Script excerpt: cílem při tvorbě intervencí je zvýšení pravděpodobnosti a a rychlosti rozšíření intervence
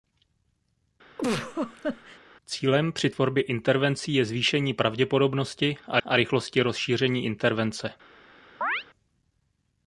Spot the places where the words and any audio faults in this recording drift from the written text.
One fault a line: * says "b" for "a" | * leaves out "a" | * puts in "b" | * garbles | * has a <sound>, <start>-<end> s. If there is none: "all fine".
* has a laugh, 1.2-2.2 s
* has a chirp, 8.6-8.8 s